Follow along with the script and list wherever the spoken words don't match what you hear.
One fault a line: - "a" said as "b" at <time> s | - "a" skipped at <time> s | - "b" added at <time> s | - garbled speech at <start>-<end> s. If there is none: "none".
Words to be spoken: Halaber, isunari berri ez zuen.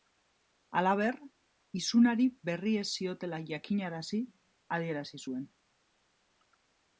- "ziotela jakinarazi adierazi" added at 3.0 s